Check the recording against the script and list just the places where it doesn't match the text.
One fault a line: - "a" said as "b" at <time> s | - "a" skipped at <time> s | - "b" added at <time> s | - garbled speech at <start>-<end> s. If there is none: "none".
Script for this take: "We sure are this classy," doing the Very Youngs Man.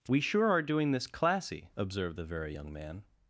- "doing" added at 0.6 s
- "doing" said as "observed" at 1.7 s
- "Youngs" said as "Young" at 2.5 s